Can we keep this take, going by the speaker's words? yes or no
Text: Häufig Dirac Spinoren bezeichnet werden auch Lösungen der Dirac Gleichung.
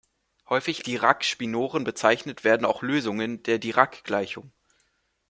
yes